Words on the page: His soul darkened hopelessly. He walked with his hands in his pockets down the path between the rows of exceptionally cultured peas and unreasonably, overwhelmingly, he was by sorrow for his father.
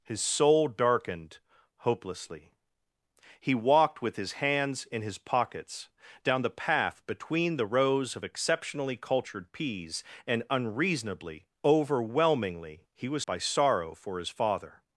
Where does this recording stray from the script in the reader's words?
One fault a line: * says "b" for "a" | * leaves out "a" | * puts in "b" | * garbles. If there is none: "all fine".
all fine